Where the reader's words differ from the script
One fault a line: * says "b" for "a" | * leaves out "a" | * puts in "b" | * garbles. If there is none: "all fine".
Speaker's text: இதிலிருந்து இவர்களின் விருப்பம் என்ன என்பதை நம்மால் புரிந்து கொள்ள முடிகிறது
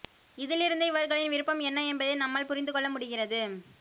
all fine